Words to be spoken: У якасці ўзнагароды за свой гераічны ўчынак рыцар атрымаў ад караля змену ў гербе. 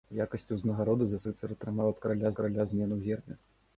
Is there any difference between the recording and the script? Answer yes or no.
yes